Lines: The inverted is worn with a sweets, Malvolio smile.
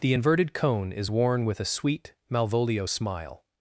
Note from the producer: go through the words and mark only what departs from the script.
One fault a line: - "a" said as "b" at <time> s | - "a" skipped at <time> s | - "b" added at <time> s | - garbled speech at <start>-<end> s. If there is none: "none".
- "cone" added at 0.5 s
- "sweets" said as "sweet" at 1.6 s